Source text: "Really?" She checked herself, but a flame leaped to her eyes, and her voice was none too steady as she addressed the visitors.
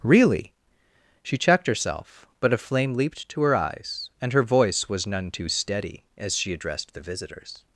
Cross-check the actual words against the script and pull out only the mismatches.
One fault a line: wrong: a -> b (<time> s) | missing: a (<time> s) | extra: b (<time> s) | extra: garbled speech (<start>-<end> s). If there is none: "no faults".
no faults